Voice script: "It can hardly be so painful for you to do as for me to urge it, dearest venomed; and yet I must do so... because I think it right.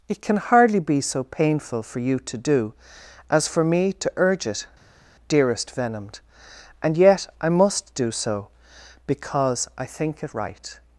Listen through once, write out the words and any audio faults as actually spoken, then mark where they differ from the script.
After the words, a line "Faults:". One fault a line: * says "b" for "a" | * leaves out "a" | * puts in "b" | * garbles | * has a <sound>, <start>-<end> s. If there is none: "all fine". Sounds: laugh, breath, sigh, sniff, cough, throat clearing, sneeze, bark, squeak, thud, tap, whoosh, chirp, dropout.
"It can hardly be so painful for you to do as for me to urge it, dearest venomed; and yet I must do so... because I think it right.
Faults:
all fine